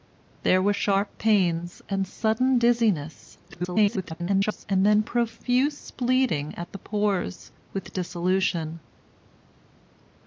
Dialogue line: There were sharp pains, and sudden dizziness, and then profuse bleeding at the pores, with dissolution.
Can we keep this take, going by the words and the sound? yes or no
no